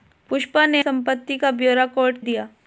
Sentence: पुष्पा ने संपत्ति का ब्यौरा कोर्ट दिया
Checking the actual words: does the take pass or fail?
pass